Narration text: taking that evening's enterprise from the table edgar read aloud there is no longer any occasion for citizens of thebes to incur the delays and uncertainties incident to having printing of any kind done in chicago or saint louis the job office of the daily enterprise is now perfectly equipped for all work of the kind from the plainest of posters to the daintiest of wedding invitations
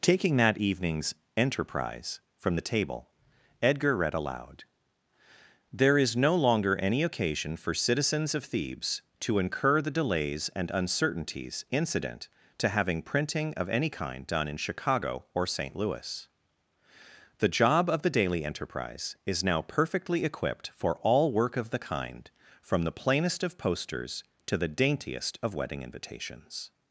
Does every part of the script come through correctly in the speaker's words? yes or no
no